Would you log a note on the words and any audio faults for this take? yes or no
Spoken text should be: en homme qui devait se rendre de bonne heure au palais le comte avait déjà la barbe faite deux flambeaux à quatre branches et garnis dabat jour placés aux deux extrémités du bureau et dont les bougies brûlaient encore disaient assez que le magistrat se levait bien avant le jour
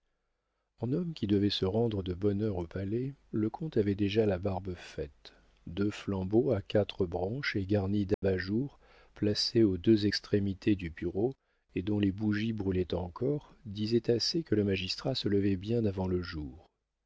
yes